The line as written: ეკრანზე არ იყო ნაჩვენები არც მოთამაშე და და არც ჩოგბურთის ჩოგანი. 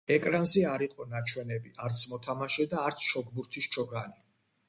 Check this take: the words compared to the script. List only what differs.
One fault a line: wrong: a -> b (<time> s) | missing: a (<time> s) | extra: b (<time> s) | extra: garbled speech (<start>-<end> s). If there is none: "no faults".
missing: და (2.9 s)